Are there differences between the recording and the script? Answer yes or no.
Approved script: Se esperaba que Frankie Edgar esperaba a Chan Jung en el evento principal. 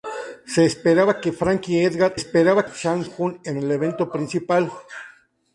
no